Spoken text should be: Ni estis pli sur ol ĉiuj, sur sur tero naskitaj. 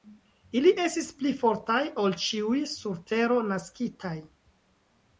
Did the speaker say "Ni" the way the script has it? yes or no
no